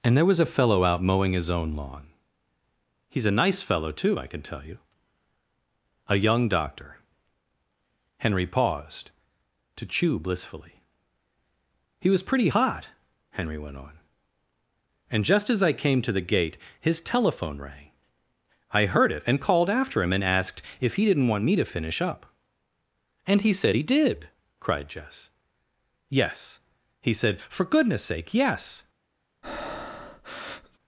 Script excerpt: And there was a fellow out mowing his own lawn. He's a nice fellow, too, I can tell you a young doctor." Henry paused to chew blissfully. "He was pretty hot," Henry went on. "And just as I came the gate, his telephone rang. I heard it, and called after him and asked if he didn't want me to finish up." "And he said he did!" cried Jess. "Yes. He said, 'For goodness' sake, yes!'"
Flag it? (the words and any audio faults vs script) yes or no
yes